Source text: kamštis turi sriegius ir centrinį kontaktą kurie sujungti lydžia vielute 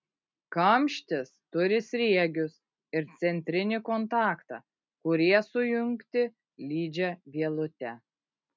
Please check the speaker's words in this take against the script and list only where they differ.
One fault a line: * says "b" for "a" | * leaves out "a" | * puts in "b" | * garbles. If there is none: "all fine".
all fine